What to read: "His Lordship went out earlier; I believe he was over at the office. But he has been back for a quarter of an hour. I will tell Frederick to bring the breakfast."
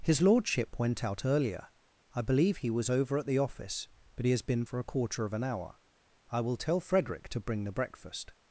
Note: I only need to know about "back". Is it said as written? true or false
false